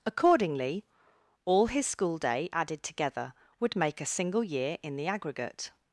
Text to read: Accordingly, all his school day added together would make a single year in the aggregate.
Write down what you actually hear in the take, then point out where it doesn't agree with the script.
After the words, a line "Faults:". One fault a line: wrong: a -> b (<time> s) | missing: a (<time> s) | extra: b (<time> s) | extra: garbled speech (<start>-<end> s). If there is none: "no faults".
Accordingly, all his school day added together would make a single year in the aggregate.
Faults:
no faults